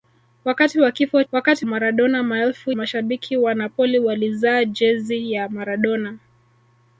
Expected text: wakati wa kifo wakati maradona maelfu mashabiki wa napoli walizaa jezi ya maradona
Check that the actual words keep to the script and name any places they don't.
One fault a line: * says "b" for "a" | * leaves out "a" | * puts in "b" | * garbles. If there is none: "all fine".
all fine